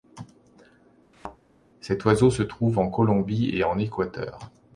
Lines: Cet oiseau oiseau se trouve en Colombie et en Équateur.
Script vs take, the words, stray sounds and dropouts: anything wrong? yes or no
yes